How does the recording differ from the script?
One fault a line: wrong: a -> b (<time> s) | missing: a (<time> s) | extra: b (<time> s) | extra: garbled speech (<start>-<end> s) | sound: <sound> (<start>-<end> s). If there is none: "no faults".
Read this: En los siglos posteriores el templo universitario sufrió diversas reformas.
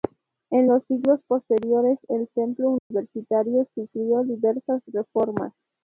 sound: dropout (2.8-2.9 s)